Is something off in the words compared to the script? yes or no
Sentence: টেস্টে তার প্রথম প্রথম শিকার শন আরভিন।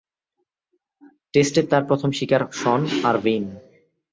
yes